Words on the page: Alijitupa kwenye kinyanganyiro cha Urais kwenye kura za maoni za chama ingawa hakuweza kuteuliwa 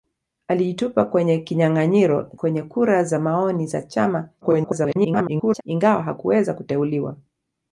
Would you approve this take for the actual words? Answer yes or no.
no